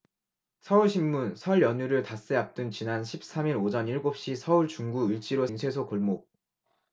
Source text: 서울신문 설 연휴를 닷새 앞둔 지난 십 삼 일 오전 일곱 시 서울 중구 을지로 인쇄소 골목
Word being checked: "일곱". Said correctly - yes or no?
yes